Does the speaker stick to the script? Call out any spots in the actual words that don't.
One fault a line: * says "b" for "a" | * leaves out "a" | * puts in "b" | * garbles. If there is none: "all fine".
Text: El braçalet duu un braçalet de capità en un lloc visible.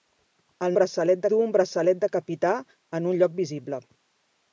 all fine